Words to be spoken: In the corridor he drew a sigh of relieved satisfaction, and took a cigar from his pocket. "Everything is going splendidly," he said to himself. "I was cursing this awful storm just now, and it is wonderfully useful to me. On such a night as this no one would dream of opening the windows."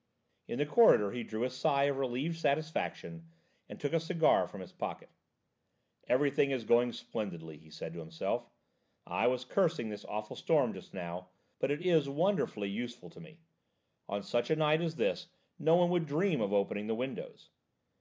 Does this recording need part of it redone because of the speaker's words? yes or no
yes